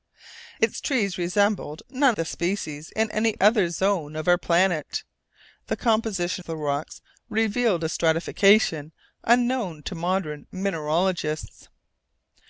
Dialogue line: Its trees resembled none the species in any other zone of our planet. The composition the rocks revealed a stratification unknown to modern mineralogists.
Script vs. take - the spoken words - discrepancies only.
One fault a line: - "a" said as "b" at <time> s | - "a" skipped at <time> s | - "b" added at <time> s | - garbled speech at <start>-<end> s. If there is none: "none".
none